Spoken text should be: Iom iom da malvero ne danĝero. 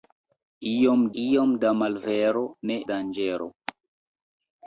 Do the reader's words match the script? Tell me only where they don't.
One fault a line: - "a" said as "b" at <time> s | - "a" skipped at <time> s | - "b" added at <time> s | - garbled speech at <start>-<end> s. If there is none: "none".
none